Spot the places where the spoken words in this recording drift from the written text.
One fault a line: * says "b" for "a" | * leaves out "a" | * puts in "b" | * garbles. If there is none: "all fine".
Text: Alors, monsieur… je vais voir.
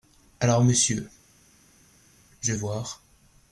* leaves out "vais"